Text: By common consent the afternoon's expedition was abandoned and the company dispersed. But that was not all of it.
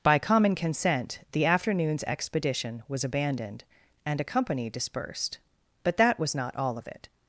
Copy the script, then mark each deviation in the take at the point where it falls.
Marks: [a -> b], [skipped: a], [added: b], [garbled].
By common consent the afternoon's expedition was abandoned and [the -> a] company dispersed. But that was not all of it.